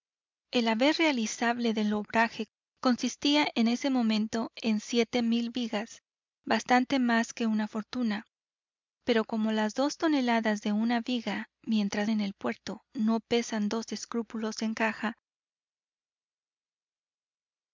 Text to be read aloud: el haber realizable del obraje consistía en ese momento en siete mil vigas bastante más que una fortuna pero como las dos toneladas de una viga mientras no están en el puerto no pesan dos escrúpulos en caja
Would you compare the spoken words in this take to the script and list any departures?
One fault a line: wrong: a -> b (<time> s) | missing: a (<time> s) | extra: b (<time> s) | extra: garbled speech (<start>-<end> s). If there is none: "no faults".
missing: no están (12.1 s)